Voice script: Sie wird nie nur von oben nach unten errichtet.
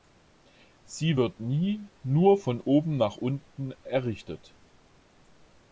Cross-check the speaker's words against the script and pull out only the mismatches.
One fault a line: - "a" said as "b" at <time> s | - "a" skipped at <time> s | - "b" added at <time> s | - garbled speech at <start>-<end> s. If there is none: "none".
none